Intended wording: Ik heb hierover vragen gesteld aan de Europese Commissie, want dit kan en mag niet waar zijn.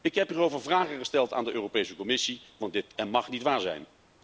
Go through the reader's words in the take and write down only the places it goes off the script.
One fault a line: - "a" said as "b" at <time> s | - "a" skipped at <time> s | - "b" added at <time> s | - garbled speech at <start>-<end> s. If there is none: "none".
- "kan" skipped at 3.0 s